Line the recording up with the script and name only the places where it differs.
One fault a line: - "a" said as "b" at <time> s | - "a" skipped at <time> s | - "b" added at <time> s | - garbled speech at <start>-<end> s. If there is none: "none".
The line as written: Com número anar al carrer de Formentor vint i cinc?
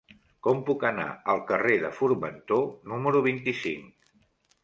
- "número" said as "puc" at 0.7 s
- "número" added at 2.9 s